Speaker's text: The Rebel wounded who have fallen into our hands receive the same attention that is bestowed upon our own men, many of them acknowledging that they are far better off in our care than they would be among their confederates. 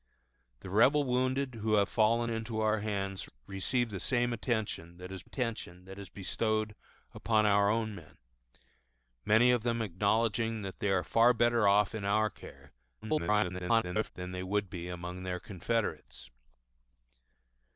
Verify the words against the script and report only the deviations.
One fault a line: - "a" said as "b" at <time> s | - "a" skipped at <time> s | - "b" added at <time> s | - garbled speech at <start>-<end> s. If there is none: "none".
- "attention that is" added at 5.2 s
- garbled speech at 13.0-14.1 s